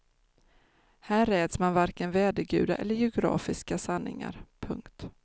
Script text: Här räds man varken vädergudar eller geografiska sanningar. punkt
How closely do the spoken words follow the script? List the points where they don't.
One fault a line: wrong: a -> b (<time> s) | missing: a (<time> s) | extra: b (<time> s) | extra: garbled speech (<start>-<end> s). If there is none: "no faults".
no faults